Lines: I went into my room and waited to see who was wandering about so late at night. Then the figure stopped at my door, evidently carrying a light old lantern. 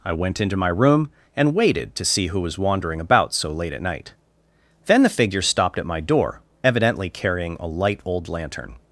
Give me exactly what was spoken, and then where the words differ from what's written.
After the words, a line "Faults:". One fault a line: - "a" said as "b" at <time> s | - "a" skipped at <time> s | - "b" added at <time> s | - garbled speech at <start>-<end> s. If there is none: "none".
I went into my room and waited to see who was wandering about so late at night. Then the figure stopped at my door, evidently carrying a light old lantern.
Faults:
none